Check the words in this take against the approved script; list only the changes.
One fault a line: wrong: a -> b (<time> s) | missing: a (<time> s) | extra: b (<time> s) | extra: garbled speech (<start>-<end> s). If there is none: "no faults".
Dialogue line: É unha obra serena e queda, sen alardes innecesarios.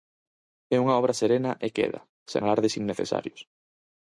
no faults